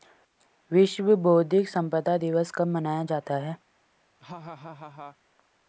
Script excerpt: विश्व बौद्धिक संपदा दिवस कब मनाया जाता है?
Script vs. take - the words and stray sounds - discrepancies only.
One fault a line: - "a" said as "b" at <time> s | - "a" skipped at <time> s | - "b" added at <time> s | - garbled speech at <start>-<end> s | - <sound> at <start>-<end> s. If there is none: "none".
- laugh at 4.2-5.2 s